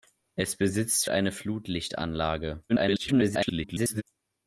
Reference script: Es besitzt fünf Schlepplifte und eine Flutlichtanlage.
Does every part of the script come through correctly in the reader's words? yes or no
no